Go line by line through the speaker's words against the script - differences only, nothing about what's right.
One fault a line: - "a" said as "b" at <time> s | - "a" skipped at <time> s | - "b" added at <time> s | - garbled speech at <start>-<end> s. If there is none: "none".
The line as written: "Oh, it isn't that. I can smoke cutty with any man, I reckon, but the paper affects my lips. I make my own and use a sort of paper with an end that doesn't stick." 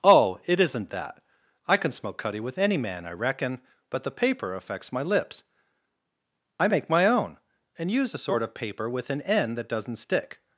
none